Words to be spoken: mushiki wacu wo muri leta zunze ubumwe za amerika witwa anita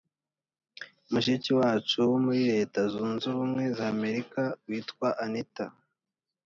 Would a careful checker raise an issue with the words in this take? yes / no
no